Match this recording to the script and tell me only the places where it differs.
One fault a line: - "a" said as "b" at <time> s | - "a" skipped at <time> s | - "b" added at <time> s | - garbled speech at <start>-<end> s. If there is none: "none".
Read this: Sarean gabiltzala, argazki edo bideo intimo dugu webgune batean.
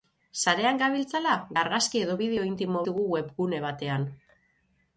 none